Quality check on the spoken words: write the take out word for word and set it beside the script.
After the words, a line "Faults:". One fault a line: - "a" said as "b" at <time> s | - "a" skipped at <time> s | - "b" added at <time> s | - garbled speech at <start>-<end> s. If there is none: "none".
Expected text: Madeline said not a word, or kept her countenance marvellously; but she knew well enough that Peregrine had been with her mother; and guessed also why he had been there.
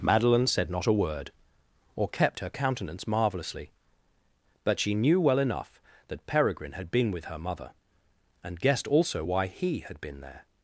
Madeline said not a word, or kept her countenance marvellously; but she knew well enough that Peregrine had been with her mother; and guessed also why he had been there.
Faults:
none